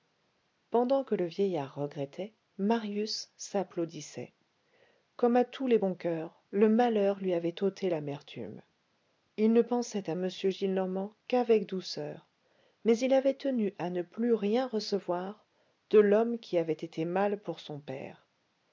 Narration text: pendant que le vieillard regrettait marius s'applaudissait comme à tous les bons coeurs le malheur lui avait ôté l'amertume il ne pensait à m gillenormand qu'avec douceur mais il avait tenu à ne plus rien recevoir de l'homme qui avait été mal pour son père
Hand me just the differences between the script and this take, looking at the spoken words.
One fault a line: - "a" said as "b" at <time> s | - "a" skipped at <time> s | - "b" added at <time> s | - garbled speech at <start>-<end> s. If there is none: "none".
none